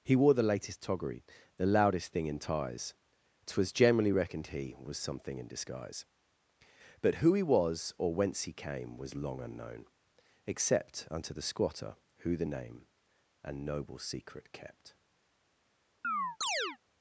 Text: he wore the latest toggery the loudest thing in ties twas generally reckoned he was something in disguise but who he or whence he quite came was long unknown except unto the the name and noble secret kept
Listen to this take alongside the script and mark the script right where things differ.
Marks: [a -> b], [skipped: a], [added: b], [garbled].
he wore the latest toggery the loudest thing in ties twas generally reckoned he was something in disguise but who he [added: was] or whence he [skipped: quite] came was long unknown except unto the [added: squatter who] the name and noble secret kept